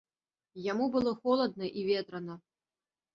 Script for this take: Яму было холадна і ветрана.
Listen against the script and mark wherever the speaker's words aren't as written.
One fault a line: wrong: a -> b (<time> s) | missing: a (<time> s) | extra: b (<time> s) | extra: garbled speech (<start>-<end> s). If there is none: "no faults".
no faults